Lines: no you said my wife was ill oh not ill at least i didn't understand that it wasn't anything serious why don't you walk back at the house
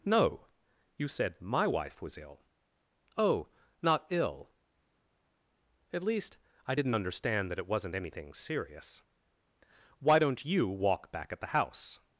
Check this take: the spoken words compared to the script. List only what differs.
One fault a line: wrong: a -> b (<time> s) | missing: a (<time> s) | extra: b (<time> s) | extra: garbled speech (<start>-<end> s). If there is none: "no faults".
no faults